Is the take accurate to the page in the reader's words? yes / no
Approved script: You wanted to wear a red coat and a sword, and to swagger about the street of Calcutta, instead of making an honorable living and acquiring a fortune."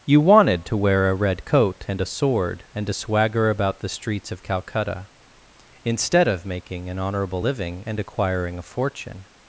no